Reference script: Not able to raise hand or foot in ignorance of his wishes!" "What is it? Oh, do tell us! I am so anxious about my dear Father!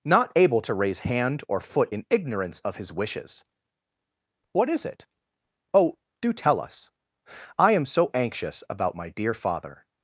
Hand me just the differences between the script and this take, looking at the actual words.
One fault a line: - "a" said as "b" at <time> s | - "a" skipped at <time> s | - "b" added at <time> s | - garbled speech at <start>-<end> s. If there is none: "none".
none